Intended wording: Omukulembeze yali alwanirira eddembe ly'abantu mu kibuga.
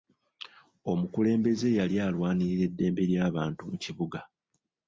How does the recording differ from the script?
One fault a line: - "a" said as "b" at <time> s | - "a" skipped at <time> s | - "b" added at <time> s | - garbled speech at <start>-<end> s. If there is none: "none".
none